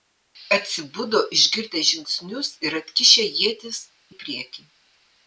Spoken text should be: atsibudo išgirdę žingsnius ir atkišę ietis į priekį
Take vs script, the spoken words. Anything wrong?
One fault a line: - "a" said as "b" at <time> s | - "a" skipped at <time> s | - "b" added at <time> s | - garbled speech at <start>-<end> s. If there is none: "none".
none